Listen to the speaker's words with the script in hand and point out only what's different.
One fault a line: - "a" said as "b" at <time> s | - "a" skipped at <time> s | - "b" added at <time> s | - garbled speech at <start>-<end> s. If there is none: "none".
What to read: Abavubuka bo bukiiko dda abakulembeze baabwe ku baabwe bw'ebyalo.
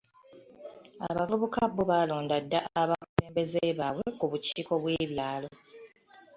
- "bukiiko" said as "baalonda" at 1.9 s
- "baabwe" said as "bukiiko" at 4.3 s